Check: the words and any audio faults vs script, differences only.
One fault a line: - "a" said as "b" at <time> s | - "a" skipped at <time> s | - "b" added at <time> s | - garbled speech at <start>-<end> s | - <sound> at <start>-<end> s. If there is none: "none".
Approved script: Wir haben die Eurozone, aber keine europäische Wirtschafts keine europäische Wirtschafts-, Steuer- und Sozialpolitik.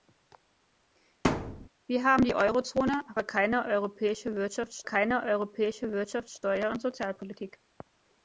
- thud at 1.2-1.7 s